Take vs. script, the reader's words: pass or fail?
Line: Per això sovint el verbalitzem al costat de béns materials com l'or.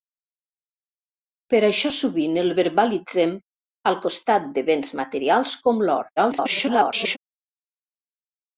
fail